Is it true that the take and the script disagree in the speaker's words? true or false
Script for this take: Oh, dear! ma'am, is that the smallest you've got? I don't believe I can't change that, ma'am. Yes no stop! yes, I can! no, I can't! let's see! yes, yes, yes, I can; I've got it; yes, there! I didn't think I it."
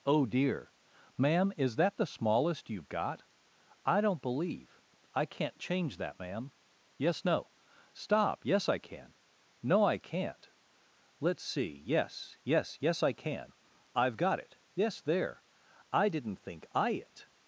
false